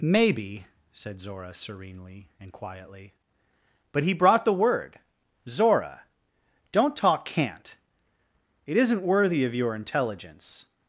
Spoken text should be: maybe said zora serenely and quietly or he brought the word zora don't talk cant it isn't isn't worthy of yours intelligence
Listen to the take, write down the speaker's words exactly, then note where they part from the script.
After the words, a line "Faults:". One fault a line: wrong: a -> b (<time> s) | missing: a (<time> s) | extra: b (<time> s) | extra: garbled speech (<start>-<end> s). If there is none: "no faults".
maybe said zora serenely and quietly but he brought the word zora don't talk cant it isn't worthy of your intelligence
Faults:
wrong: or -> but (3.9 s)
missing: isn't (9.0 s)
wrong: yours -> your (9.5 s)